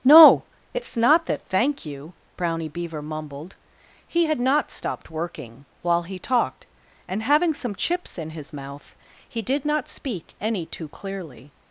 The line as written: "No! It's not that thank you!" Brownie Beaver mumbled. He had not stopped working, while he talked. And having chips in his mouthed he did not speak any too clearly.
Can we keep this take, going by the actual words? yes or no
no